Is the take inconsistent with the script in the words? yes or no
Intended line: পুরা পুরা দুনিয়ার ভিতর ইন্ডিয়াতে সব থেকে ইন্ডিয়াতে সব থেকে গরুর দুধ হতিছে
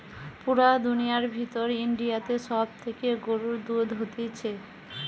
yes